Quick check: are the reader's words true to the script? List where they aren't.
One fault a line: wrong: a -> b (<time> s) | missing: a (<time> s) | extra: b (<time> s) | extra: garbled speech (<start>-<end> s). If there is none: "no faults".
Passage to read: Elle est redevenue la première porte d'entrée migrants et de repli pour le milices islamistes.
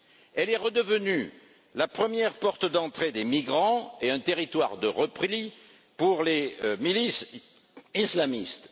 extra: des (3.1 s)
extra: un territoire (4.1 s)
wrong: le -> les (6.2 s)